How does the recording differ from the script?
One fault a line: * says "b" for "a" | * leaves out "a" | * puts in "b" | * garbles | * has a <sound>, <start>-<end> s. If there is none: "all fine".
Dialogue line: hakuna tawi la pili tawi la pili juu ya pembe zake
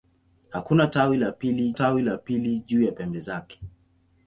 all fine